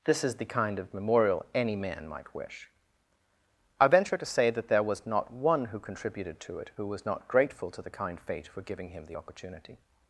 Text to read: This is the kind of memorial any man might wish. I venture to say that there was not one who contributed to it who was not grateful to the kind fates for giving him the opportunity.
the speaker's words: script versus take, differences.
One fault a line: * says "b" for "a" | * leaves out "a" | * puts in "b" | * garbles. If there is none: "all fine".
* says "fate" for "fates"